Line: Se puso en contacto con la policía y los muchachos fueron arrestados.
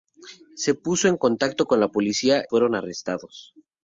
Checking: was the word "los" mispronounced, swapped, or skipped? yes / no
yes